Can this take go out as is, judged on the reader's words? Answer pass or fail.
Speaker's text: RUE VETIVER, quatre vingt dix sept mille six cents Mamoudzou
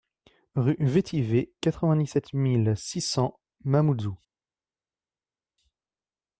pass